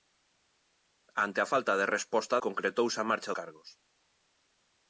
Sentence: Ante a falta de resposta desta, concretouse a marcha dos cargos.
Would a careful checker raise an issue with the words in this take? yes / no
yes